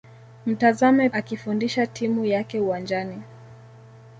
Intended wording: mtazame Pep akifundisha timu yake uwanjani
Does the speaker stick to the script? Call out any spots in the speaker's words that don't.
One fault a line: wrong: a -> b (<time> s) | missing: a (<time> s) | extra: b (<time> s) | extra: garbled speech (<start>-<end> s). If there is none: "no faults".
missing: Pep (1.1 s)